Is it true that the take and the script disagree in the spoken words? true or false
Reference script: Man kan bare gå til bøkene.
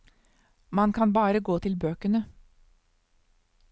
false